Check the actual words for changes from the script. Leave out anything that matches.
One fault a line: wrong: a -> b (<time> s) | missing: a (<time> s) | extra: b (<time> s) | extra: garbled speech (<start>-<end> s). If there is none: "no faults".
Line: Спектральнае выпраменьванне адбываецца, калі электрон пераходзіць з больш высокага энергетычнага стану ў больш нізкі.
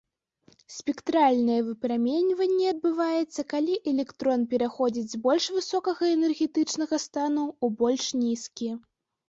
no faults